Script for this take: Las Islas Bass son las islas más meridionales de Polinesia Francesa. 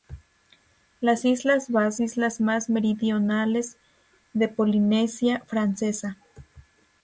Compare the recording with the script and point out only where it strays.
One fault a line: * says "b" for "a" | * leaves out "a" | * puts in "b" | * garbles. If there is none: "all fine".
* leaves out "son las"